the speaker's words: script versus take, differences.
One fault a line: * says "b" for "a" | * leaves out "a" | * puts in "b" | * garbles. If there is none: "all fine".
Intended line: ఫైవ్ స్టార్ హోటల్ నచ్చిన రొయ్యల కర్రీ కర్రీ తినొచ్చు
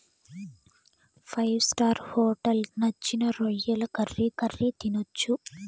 all fine